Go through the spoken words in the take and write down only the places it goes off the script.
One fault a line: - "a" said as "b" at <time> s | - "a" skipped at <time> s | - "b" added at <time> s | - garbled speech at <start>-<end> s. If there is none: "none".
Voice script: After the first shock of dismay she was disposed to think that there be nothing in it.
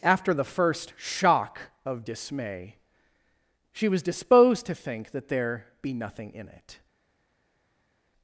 none